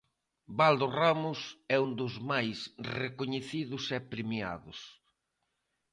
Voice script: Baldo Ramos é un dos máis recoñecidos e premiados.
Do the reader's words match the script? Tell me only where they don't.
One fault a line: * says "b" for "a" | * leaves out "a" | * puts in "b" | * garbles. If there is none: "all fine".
all fine